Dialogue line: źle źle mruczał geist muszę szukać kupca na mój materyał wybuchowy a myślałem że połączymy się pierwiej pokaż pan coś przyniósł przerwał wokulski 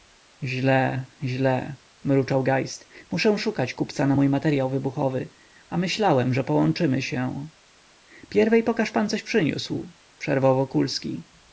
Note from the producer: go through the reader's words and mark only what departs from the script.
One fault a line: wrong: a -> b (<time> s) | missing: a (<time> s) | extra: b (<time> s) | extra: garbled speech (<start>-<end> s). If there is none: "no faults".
no faults